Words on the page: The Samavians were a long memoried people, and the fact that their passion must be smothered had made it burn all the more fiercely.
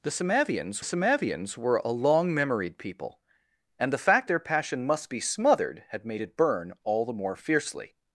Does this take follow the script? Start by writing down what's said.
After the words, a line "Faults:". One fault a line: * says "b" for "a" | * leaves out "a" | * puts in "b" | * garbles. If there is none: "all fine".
The Samavians Samavians were a long memoried people, and the fact their passion must be smothered had made it burn all the more fiercely.
Faults:
* puts in "Samavians"
* leaves out "that"